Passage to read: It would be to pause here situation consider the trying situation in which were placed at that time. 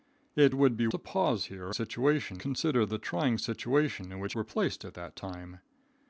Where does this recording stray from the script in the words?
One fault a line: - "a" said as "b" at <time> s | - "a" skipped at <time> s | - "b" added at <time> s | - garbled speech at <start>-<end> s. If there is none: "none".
none